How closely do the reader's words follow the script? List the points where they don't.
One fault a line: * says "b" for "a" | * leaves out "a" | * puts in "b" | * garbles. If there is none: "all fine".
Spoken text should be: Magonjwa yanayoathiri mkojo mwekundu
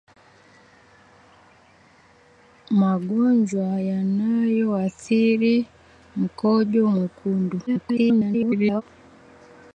* garbles